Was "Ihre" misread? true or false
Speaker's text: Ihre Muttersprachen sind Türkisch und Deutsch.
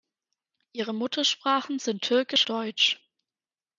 false